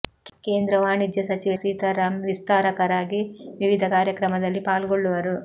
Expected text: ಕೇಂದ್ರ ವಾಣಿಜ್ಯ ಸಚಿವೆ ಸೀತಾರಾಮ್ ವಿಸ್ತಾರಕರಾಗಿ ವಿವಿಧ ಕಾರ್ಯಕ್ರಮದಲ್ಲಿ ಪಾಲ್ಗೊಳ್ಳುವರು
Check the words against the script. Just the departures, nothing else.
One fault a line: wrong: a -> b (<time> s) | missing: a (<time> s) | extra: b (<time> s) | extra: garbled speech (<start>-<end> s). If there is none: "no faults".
no faults